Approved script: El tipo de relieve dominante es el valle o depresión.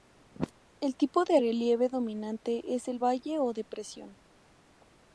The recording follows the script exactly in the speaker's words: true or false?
true